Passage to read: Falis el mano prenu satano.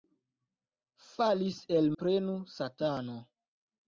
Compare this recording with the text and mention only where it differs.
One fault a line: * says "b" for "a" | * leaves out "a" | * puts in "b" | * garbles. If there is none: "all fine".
* leaves out "mano"